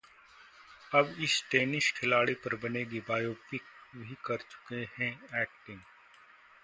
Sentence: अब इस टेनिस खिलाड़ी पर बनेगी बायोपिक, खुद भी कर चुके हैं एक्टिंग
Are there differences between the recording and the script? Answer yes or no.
yes